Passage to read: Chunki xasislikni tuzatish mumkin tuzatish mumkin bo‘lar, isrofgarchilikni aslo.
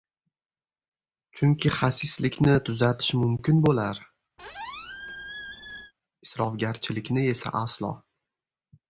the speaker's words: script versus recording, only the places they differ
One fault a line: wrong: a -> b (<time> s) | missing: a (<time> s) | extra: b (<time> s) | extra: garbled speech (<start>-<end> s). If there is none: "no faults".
missing: tuzatish mumkin (3.6 s)
extra: esa (7.4 s)